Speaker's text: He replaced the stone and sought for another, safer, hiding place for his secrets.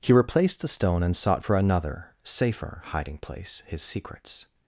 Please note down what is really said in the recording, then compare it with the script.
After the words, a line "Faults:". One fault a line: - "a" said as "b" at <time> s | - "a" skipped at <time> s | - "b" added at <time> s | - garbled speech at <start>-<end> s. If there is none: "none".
He replaced the stone and sought for another, safer, hiding place his secrets.
Faults:
- "for" skipped at 3.6 s